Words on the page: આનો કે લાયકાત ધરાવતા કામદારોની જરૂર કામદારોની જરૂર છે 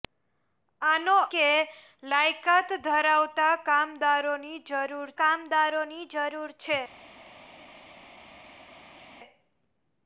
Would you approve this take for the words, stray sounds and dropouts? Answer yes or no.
yes